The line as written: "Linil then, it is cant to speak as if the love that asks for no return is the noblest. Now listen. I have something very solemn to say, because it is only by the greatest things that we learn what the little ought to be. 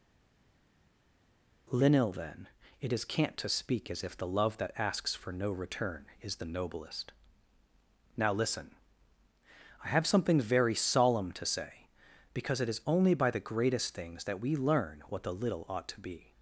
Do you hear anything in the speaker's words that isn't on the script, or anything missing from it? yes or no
no